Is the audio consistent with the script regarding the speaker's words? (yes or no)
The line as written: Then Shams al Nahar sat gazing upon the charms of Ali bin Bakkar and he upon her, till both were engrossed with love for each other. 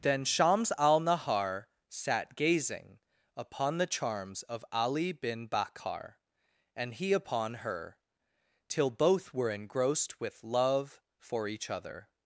yes